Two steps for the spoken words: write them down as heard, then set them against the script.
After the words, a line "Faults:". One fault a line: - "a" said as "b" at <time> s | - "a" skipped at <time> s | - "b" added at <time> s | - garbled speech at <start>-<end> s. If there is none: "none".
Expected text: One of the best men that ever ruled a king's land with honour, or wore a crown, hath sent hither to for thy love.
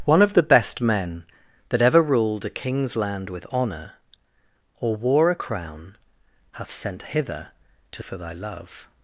One of the best men that ever ruled a king's land with honour, or wore a crown, hath sent hither to for thy love.
Faults:
none